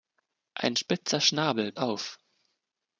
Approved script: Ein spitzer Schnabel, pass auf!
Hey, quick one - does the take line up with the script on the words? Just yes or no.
no